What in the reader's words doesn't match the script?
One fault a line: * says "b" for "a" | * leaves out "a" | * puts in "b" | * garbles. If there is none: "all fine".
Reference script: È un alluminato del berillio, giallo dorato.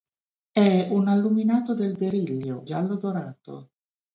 all fine